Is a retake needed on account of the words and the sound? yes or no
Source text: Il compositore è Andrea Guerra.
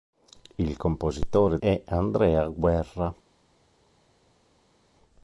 no